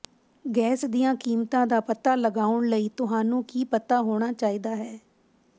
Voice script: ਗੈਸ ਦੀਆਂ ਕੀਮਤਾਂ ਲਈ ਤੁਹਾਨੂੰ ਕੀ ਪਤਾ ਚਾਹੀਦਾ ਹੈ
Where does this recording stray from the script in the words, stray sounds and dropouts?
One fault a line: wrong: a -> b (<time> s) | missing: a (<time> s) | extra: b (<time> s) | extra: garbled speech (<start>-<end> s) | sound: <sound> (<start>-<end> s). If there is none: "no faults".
extra: ਦਾ ਪਤਾ ਲਗਾਉਣ (1.7 s)
extra: ਹੋਣਾ (4.0 s)